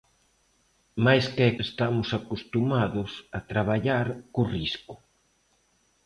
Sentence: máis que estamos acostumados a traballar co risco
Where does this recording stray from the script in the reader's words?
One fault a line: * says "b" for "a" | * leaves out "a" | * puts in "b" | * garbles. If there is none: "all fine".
all fine